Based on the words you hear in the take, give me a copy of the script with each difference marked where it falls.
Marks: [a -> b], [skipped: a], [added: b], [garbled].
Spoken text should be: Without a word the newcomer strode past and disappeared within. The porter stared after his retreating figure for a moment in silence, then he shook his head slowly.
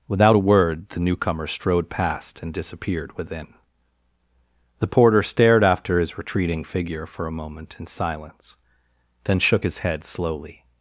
Without a word the newcomer strode past and disappeared within. The porter stared after his retreating figure for a moment in silence, then [skipped: he] shook his head slowly.